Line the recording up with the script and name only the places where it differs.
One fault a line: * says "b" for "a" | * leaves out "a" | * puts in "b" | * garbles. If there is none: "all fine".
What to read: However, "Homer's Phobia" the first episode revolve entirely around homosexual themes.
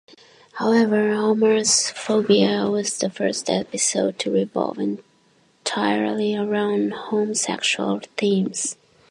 * puts in "was"
* puts in "to"